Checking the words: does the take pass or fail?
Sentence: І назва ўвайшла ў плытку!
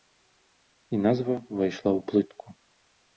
pass